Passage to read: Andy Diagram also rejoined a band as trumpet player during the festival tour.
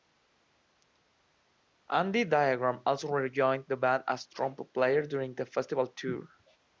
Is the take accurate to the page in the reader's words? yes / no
no